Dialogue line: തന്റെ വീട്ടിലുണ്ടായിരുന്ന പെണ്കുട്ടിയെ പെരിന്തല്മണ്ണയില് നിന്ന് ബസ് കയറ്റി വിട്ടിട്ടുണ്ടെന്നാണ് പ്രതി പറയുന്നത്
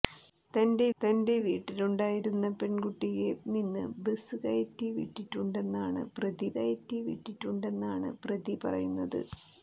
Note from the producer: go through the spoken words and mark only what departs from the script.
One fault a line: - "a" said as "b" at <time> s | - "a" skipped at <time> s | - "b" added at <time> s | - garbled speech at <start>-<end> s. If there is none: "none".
- "തന്റെ" added at 1.0 s
- "പെരിന്തല്മണ്ണയില്" skipped at 3.3 s
- "കയറ്റി വിട്ടിട്ടുണ്ടെന്നാണ് പ്രതി" added at 6.6 s